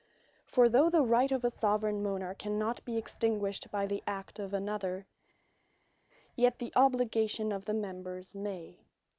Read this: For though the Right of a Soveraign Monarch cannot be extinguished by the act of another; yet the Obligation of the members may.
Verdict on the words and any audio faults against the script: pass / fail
pass